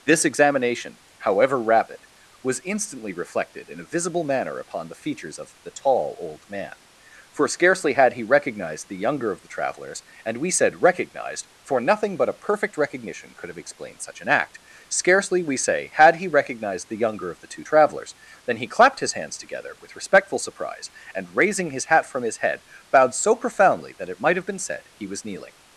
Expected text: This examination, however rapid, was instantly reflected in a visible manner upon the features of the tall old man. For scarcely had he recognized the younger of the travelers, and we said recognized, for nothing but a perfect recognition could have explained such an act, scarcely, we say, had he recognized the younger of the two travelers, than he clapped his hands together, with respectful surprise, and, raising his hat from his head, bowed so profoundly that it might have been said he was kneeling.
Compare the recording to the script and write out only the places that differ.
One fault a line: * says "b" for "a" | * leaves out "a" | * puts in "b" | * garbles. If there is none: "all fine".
all fine